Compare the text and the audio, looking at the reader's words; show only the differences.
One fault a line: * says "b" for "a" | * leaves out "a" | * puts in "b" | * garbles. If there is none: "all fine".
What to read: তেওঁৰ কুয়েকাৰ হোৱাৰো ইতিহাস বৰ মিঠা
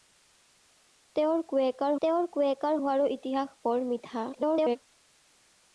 * puts in "তেওঁৰ কুয়েকাৰ"
* garbles